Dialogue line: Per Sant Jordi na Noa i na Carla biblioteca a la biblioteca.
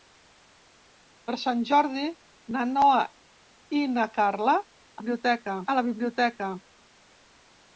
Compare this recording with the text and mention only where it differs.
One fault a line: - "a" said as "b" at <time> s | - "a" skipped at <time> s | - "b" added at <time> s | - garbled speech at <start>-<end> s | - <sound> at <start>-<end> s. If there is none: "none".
none